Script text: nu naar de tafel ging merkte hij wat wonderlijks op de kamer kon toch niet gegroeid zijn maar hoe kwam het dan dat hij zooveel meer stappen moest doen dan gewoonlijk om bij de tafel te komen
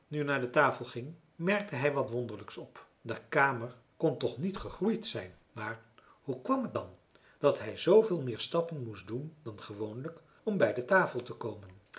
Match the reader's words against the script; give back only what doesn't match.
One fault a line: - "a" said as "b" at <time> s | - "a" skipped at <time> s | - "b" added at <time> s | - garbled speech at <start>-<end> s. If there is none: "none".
none